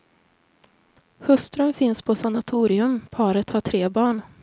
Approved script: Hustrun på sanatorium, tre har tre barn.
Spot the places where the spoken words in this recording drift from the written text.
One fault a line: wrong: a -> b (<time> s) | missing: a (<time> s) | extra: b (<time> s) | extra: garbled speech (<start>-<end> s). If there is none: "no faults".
extra: finns (1.7 s)
wrong: tre -> paret (3.1 s)